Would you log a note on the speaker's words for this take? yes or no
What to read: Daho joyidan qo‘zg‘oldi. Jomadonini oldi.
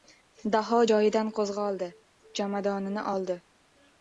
no